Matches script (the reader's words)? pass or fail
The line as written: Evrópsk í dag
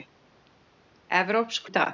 pass